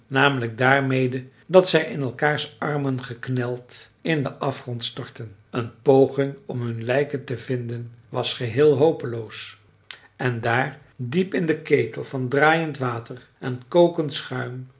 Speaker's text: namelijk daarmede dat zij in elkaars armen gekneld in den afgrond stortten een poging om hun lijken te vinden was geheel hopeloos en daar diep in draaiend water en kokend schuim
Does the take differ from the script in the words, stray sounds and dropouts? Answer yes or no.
yes